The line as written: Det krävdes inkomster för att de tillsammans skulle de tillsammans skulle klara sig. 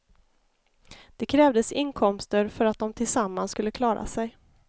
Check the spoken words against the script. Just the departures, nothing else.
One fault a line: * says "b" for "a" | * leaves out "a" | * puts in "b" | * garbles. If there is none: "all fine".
* leaves out "de tillsammans skulle"